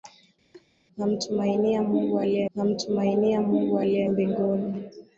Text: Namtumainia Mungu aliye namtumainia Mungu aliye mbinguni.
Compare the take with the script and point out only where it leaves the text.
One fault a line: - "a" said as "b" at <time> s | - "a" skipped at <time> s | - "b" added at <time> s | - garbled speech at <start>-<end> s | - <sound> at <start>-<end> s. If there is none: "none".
- laugh at 0.5-0.7 s